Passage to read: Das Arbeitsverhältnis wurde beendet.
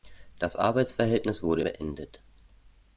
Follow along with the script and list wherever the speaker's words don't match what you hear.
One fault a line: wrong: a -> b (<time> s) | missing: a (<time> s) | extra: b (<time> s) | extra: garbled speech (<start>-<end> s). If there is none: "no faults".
no faults